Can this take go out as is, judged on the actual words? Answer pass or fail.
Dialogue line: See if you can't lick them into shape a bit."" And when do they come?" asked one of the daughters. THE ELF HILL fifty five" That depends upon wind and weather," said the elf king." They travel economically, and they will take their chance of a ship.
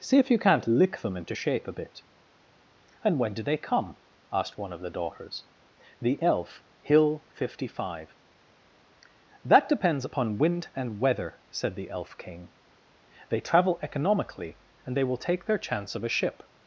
pass